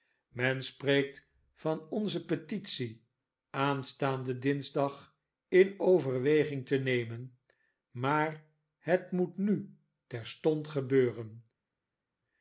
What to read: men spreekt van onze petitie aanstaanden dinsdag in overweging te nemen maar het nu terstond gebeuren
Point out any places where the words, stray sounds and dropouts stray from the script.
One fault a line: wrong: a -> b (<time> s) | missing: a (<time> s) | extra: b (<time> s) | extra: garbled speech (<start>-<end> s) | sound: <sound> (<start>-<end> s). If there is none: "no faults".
extra: moet (9.1 s)